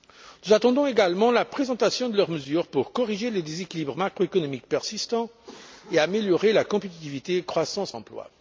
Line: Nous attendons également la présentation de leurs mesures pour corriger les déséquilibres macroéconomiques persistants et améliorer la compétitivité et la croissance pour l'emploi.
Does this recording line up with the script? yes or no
no